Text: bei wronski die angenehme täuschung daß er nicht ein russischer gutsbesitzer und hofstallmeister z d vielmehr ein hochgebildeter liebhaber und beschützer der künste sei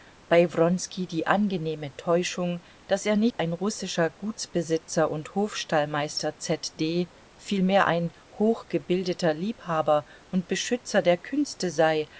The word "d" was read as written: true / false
true